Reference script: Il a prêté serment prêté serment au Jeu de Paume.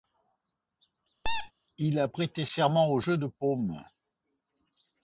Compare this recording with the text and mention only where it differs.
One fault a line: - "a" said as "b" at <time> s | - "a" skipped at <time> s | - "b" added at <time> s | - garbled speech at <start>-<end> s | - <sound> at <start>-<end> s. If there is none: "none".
- squeak at 1.2-1.5 s
- "prêté serment" skipped at 2.9 s